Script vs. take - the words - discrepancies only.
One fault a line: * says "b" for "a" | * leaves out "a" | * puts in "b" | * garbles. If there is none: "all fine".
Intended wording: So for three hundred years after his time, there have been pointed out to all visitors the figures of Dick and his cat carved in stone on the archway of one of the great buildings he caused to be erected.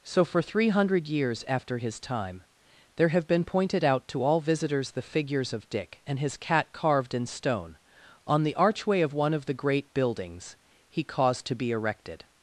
all fine